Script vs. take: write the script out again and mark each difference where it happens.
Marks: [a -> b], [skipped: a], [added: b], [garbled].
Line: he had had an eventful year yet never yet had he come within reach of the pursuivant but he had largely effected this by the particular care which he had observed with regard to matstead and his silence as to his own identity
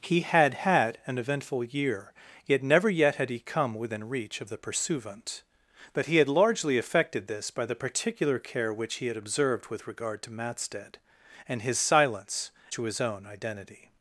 he had had an eventful year yet never yet had he come within reach of the pursuivant but he had largely effected this by the particular care which he had observed with regard to matstead and his silence [skipped: as] to his own identity